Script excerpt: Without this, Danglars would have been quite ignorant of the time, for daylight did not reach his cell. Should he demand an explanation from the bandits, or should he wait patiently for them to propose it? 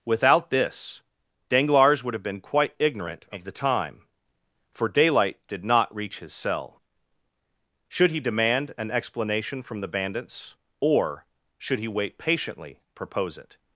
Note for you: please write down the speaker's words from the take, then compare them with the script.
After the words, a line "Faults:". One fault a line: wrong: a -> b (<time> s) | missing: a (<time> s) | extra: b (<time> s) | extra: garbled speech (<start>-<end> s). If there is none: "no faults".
Without this, Danglars would have been quite ignorant of the time, for daylight did not reach his cell. Should he demand an explanation from the bandits, or should he wait patiently propose it?
Faults:
missing: for them to (12.8 s)